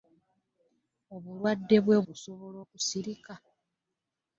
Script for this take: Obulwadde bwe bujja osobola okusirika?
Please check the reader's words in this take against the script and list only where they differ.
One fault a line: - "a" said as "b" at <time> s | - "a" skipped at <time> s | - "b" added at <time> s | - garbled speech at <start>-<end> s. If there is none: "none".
- "bujja" skipped at 2.0 s